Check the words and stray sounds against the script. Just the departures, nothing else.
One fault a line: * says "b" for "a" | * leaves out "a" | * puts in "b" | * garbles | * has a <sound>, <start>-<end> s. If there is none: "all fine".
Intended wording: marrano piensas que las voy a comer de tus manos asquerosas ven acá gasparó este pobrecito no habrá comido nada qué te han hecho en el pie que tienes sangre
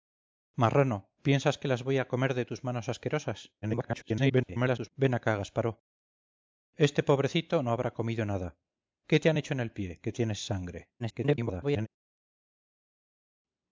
* garbles
* garbles